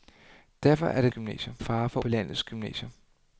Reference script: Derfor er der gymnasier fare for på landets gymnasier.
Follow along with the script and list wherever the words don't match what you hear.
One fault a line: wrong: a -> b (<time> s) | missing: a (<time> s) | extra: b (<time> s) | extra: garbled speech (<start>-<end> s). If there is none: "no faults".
no faults